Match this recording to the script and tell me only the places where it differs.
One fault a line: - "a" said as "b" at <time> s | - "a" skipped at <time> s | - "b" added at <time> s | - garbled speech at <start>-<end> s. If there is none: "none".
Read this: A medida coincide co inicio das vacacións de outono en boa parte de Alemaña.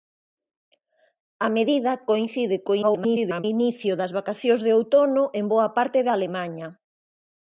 - garbled speech at 2.8-3.4 s